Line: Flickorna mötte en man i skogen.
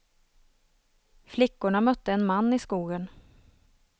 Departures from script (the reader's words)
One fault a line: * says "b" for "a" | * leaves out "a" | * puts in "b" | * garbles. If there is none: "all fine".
all fine